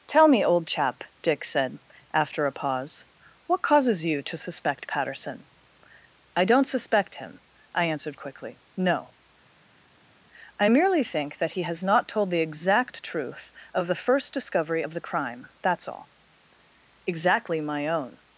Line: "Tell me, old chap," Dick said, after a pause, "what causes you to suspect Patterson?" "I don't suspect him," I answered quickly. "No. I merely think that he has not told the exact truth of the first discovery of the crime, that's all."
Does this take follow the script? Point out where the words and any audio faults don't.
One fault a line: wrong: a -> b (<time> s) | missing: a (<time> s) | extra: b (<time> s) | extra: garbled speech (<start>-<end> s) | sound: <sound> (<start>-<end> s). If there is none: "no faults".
extra: Exactly my own (17.1 s)